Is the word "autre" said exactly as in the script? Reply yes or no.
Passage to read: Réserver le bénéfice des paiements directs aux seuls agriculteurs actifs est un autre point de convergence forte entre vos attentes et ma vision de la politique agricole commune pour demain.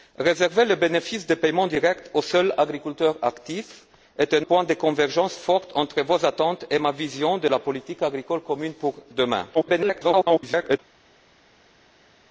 no